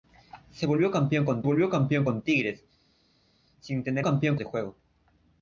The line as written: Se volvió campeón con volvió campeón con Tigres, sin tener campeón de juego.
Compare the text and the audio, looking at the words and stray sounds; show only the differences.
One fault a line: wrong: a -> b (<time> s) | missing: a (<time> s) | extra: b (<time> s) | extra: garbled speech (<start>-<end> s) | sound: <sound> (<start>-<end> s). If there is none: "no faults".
no faults